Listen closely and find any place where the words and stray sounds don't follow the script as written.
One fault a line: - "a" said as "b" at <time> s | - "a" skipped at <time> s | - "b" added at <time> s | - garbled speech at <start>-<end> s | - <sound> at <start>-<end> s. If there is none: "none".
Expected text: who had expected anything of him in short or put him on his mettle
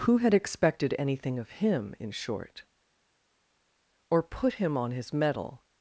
none